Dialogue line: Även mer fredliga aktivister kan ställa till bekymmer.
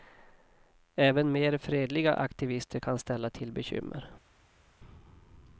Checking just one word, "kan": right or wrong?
right